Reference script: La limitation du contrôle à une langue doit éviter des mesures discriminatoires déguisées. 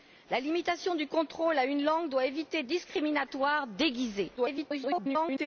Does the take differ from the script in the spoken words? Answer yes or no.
yes